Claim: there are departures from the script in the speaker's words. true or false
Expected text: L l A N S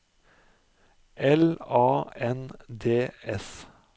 true